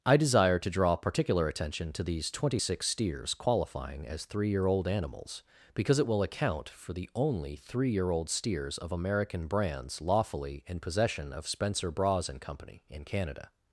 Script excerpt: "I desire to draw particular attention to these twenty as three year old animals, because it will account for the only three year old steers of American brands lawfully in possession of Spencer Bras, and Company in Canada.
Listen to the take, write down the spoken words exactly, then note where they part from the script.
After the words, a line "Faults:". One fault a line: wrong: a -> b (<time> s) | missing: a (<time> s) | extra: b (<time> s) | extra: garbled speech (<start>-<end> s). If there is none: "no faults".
"I desire to draw particular attention to these twenty six steers qualifying as three year old animals, because it will account for the only three year old steers of American brands lawfully in possession of Spencer Bras, and Company in Canada.
Faults:
extra: six steers qualifying (2.6 s)